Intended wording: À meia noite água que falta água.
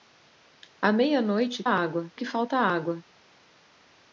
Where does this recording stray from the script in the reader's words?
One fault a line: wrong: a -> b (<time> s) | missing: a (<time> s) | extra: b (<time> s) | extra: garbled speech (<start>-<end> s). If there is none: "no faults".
no faults